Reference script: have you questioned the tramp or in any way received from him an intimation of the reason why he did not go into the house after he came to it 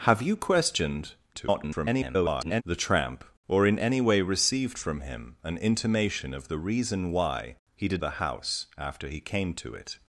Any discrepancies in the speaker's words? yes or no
yes